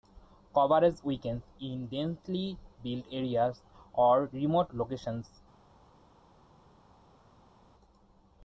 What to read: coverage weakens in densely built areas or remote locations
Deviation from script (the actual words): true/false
false